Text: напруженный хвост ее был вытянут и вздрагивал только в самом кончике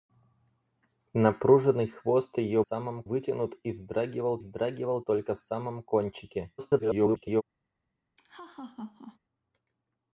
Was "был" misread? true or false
true